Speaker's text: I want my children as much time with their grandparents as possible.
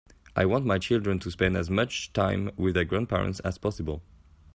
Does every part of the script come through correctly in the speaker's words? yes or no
no